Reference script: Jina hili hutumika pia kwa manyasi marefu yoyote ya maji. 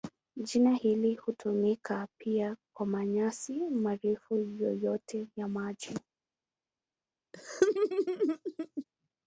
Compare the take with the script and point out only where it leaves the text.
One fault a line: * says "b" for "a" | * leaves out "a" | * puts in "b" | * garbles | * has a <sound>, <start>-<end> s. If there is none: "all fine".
* has a laugh, 7.3-8.8 s